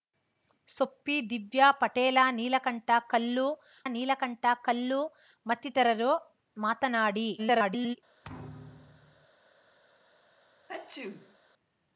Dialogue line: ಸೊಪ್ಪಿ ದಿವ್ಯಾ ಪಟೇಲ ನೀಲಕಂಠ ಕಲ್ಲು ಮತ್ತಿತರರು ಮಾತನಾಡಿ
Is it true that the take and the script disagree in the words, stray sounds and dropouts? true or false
true